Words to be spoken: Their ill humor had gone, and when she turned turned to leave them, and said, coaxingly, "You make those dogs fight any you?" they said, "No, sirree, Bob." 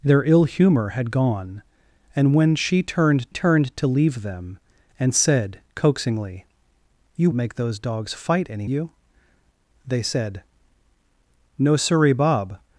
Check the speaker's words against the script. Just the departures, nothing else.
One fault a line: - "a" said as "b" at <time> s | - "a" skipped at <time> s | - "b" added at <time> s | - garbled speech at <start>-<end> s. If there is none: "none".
none